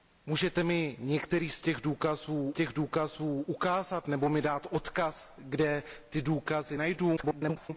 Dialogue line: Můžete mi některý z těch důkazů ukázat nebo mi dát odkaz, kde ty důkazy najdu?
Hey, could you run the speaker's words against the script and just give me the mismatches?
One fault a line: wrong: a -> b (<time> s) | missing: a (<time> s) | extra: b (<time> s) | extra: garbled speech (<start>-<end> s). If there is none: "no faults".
extra: těch důkazů (2.5 s)
extra: garbled speech (7.2-7.7 s)